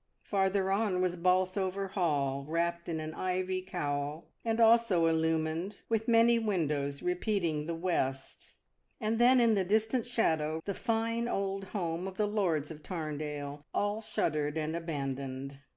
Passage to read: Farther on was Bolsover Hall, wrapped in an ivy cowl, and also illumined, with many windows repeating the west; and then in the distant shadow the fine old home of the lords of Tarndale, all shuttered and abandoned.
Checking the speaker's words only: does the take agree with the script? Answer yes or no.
yes